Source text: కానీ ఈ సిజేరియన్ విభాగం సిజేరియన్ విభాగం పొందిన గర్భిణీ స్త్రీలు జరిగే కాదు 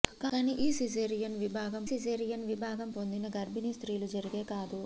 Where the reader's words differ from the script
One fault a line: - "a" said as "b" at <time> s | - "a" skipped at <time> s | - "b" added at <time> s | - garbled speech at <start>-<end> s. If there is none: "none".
none